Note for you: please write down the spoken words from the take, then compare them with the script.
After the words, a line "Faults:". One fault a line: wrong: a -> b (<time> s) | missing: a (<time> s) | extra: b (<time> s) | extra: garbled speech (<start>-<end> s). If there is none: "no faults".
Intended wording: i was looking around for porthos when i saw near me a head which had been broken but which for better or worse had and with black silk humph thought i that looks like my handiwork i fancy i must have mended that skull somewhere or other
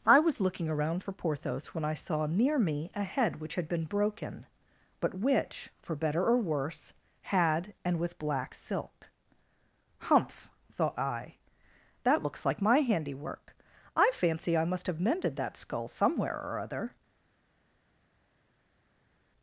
i was looking around for porthos when i saw near me a head which had been broken but which for better or worse had and with black silk humph thought i that looks like my handiwork i fancy i must have mended that skull somewhere or other
Faults:
no faults